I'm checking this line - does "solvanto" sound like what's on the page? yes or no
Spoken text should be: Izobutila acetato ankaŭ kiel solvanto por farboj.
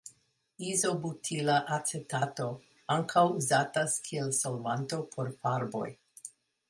yes